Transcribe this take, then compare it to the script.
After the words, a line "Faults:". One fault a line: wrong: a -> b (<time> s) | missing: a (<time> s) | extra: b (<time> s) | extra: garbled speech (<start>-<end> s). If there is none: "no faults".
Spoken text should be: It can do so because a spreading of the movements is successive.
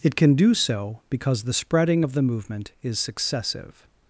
It can do so because the spreading of the movement is successive.
Faults:
wrong: a -> the (1.4 s)
wrong: movements -> movement (2.2 s)